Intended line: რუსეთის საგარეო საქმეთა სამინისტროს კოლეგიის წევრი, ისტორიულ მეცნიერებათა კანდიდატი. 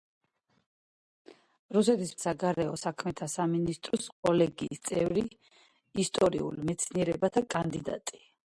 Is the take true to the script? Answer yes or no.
yes